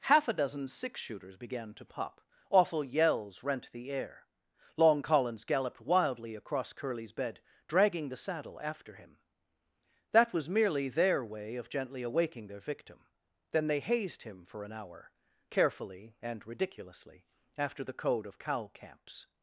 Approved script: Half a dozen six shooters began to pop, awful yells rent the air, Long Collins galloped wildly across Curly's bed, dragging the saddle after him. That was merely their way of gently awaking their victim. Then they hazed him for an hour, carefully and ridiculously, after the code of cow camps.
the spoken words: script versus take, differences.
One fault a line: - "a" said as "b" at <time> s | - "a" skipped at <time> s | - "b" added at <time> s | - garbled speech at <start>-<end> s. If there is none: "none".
none